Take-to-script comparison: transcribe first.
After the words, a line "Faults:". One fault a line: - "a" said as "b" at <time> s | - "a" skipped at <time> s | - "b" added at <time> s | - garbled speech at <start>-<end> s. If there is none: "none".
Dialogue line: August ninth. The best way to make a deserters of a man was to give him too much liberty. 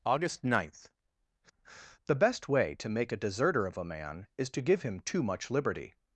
August ninth. The best way to make a deserter of a man is to give him too much liberty.
Faults:
- "deserters" said as "deserter" at 3.2 s
- "was" said as "is" at 4.3 s